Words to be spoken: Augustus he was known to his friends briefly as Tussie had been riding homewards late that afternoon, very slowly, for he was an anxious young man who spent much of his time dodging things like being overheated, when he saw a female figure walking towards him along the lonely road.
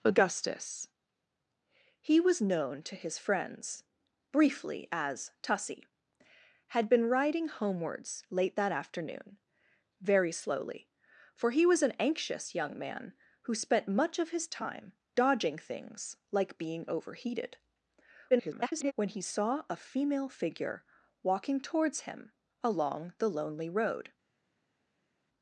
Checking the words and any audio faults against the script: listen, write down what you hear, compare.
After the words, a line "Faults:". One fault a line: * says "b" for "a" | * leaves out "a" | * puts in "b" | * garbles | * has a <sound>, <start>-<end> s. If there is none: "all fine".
Augustus he was known to his friends briefly as Tussie had been riding homewards late that afternoon, very slowly, for he was an anxious young man who spent much of his time dodging things like being overheated, [garbled] when he saw a female figure walking towards him along the lonely road.
Faults:
* garbles